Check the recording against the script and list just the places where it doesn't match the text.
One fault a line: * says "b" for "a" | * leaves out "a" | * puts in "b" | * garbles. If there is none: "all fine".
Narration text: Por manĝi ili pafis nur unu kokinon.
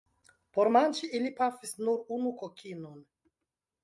all fine